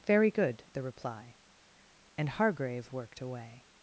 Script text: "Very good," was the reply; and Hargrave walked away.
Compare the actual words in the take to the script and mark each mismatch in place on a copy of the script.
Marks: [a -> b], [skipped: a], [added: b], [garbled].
"Very good," [skipped: was] the reply; and Hargrave [walked -> worked] away.